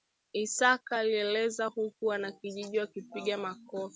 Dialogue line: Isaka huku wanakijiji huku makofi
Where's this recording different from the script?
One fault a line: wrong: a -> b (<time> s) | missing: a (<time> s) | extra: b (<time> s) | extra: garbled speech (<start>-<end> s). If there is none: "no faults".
extra: alieleza (1.0 s)
wrong: huku -> wakipiga (2.8 s)